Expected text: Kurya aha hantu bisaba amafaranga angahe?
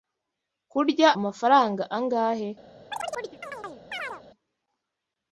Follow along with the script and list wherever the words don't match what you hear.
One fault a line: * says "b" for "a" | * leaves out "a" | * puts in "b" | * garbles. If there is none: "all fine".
* leaves out "aha hantu bisaba"